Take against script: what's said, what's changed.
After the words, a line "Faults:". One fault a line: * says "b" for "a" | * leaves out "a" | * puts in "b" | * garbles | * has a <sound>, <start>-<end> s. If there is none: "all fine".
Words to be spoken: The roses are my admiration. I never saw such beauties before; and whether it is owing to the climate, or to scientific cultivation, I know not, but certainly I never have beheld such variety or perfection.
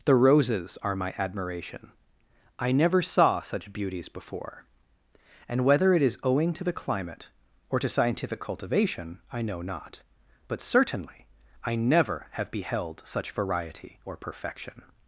The roses are my admiration. I never saw such beauties before; and whether it is owing to the climate, or to scientific cultivation, I know not, but certainly I never have beheld such variety or perfection.
Faults:
all fine